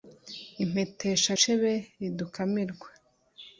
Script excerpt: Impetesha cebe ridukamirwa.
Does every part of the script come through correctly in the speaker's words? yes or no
yes